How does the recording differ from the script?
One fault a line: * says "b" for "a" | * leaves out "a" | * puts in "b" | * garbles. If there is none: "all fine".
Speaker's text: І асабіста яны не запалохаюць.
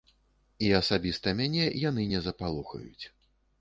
* puts in "мяне"